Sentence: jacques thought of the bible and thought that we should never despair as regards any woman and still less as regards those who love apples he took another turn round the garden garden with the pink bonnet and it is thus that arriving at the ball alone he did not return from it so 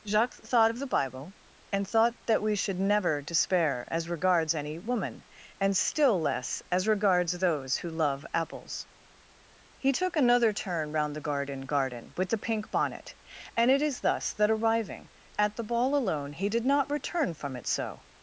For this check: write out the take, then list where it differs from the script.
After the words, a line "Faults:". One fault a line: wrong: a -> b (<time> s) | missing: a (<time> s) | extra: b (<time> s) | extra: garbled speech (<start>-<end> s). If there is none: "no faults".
jacques thought of the bible and thought that we should never despair as regards any woman and still less as regards those who love apples he took another turn round the garden garden with the pink bonnet and it is thus that arriving at the ball alone he did not return from it so
Faults:
no faults